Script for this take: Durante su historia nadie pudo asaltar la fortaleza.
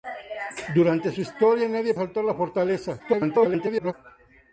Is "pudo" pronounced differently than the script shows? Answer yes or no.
yes